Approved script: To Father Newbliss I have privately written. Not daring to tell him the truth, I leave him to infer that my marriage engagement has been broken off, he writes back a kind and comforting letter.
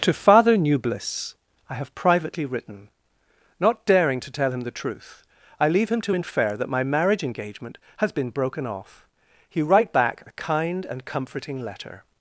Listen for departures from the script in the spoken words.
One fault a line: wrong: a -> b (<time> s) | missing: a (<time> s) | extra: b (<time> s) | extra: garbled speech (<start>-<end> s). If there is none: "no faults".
wrong: writes -> write (9.6 s)